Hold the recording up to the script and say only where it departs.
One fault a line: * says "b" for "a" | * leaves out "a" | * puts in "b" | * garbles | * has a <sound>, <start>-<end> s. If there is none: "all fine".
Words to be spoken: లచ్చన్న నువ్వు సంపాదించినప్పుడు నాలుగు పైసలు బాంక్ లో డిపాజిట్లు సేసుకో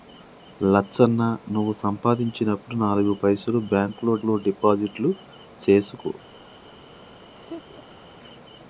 * puts in "లో"
* has a laugh, 7.3-8.0 s